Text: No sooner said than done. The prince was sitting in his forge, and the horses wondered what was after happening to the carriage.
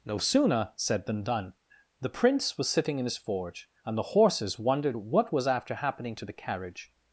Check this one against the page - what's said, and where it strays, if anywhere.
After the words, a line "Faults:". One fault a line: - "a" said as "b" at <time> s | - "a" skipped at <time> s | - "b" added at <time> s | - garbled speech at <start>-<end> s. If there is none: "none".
No sooner said than done. The prince was sitting in his forge, and the horses wondered what was after happening to the carriage.
Faults:
none